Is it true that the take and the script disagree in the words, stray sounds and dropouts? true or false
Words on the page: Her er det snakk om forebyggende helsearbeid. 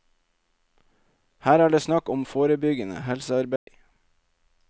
true